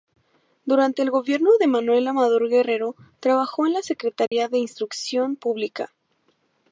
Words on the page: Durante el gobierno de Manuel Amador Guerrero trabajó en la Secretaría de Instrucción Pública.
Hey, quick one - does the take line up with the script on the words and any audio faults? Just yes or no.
no